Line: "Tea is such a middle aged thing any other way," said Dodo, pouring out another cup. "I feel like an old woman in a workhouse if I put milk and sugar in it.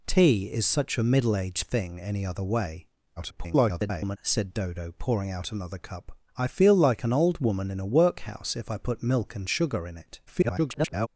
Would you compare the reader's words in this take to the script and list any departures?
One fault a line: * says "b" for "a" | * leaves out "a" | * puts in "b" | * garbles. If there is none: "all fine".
* garbles
* garbles